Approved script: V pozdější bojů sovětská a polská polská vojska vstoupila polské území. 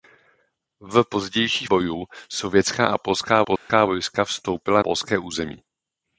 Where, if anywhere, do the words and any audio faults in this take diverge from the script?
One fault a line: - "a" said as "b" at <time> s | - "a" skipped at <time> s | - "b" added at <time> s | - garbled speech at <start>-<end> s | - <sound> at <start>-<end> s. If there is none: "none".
- dropout at 3.6-3.7 s